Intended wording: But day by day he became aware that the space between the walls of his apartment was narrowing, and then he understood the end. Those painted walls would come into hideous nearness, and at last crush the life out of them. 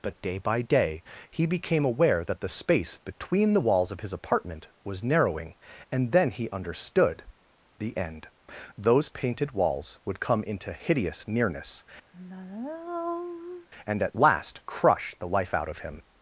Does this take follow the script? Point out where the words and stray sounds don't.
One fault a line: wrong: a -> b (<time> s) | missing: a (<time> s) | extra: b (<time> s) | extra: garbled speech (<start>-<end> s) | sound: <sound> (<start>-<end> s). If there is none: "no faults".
sound: sigh (12.1-13.7 s)
wrong: them -> him (15.8 s)